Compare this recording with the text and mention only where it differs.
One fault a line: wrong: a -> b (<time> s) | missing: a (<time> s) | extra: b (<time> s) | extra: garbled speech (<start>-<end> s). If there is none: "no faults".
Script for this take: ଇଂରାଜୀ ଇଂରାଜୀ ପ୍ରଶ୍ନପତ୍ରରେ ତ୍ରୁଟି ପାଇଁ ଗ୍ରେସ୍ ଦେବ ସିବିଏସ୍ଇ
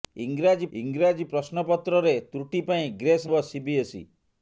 no faults